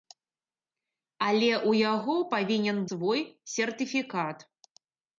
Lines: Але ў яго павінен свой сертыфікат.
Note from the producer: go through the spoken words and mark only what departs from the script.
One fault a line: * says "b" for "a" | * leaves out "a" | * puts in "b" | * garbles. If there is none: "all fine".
all fine